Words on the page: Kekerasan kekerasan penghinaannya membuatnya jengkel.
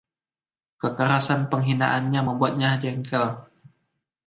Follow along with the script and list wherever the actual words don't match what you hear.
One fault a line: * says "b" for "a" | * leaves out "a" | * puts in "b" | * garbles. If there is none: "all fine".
* leaves out "kekerasan"